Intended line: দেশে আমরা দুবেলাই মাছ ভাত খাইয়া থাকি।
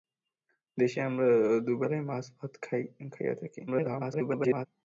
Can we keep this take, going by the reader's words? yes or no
no